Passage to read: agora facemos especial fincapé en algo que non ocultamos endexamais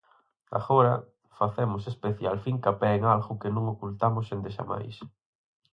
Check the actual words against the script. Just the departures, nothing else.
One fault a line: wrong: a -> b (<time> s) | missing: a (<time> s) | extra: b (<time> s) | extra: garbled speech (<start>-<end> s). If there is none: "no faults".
no faults